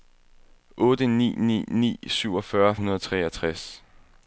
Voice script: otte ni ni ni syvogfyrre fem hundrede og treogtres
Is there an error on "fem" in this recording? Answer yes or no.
yes